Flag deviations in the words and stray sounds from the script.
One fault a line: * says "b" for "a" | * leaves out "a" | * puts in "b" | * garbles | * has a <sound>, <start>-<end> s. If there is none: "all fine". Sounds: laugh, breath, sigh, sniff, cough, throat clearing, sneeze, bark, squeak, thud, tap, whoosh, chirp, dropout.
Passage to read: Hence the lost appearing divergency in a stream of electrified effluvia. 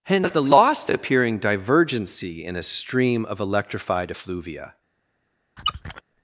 * has a squeak, 5.6-6.0 s